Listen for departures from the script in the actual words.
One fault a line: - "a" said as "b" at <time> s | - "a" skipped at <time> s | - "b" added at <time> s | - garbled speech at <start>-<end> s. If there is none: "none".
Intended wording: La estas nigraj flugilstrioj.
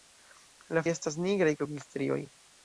none